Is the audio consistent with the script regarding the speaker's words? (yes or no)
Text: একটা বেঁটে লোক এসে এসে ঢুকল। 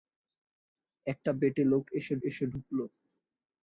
yes